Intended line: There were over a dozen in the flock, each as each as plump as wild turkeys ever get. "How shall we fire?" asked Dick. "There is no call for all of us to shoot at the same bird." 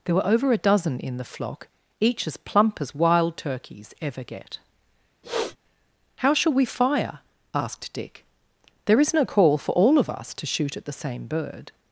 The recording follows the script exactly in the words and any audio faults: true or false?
false